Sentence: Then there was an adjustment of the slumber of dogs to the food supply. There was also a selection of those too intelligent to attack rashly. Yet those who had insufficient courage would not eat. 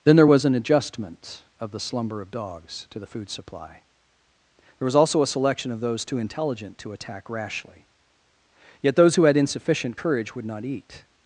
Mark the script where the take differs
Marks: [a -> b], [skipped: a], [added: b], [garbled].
Then there was an adjustment of the slumber of dogs to the food supply. There was also a selection of those too intelligent to attack rashly. Yet those who had insufficient courage would not eat.